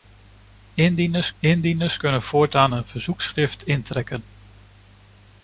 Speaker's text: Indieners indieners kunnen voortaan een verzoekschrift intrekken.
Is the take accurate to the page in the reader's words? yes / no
yes